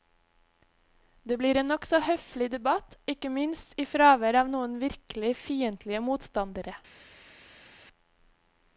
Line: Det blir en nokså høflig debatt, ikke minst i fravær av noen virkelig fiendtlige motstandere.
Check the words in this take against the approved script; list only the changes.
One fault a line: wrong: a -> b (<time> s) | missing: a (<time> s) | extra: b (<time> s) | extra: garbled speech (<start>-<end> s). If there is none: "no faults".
no faults